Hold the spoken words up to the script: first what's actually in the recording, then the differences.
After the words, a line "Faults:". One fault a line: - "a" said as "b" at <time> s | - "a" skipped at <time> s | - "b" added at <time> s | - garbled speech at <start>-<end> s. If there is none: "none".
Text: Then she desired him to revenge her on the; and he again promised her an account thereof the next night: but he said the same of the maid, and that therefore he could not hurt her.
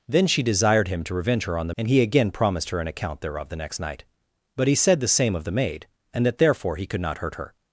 Then she desired him to revenge her on the; and he again promised her an account thereof the next night: but he said the same of the maid, and that therefore he could not hurt her.
Faults:
none